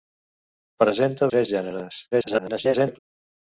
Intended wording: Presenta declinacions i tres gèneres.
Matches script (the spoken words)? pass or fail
fail